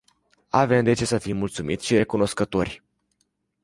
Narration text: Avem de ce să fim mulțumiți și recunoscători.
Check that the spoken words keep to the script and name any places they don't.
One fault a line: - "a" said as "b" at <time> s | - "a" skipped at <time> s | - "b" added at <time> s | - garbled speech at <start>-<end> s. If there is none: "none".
none